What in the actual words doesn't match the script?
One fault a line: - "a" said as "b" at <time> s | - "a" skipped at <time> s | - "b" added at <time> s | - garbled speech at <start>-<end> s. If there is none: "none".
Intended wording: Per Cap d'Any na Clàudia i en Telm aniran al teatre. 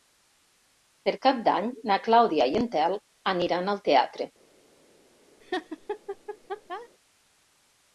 none